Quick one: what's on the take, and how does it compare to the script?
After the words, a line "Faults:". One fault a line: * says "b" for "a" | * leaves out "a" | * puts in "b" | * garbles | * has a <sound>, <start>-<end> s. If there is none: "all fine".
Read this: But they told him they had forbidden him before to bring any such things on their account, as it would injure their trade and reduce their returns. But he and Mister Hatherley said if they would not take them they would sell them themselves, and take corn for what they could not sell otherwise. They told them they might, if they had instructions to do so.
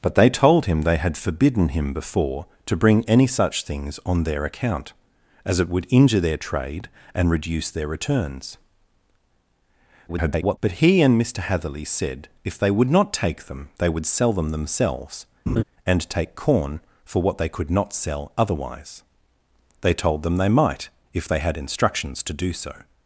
But they told him they had forbidden him before to bring any such things on their account, as it would injure their trade and reduce their returns. [garbled] But he and Mister Hatherley said if they would not take them they would sell them themselves, and take corn for what they could not sell otherwise. They told them they might, if they had instructions to do so.
Faults:
* garbles
* has a laugh, 15.5-15.6 s